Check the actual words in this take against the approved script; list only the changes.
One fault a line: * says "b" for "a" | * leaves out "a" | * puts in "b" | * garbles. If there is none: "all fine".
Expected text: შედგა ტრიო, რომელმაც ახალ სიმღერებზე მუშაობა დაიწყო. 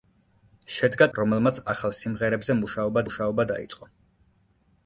* leaves out "ტრიო"
* puts in "მუშაობა"